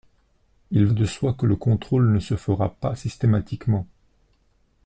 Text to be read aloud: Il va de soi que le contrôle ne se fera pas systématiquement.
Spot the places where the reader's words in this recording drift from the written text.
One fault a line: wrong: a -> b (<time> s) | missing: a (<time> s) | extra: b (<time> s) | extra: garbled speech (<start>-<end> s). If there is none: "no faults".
missing: va (0.9 s)